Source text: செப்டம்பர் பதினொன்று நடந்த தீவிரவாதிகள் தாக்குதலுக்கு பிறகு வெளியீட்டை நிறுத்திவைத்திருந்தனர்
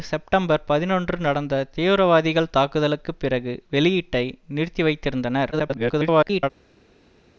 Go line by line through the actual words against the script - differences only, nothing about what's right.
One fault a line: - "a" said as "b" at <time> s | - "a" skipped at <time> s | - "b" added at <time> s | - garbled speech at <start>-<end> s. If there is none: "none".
- garbled speech at 5.5-6.5 s